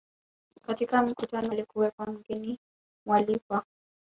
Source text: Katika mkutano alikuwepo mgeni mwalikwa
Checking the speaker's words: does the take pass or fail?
pass